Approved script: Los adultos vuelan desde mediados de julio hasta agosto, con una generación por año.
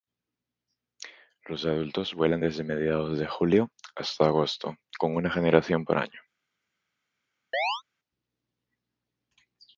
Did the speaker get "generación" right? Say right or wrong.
right